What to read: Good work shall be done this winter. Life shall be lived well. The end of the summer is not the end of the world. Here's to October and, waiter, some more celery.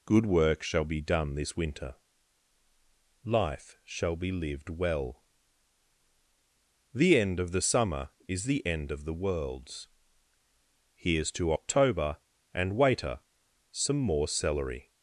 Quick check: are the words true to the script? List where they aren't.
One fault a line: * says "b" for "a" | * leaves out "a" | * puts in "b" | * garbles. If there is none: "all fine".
* leaves out "not"
* says "worlds" for "world"